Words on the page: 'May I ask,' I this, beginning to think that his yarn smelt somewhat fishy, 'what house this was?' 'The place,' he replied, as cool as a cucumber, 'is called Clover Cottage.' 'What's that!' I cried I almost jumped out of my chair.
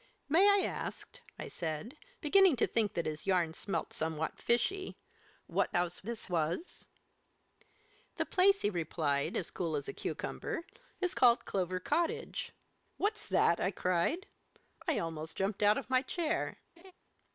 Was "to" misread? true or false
false